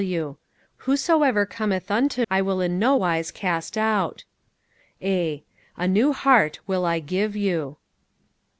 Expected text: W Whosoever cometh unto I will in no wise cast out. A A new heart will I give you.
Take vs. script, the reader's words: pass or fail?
pass